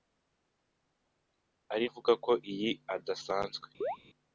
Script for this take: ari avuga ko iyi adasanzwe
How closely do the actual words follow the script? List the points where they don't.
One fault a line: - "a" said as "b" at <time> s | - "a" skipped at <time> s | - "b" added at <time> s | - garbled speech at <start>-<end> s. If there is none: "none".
none